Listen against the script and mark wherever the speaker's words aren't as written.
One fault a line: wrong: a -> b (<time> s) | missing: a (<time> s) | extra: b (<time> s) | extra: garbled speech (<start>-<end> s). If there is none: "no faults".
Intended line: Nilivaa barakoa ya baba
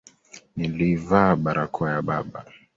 no faults